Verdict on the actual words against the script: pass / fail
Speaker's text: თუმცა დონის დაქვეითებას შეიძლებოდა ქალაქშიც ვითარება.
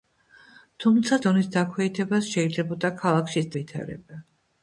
pass